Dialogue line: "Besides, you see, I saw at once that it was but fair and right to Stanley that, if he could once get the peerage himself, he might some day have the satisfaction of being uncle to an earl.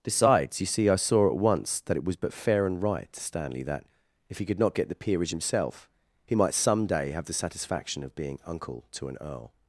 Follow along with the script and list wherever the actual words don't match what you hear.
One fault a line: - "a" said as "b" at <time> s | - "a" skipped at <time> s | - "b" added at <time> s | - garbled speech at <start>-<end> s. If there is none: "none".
- "once" said as "not" at 4.6 s